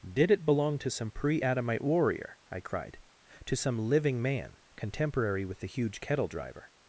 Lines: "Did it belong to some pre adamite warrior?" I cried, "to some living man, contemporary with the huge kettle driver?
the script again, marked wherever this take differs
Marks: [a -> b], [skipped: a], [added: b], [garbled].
"Did it belong to some pre adamite warrior?" I cried, "to some living man, contemporary with the huge kettle driver?